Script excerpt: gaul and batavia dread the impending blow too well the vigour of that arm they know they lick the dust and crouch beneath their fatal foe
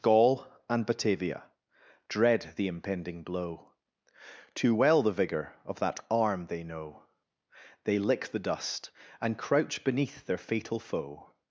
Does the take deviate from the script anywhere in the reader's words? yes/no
no